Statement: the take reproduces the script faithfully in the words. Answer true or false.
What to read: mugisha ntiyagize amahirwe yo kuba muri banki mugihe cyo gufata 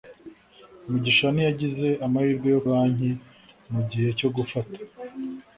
false